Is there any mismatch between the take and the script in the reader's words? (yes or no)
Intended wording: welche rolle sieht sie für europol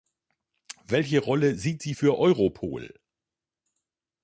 no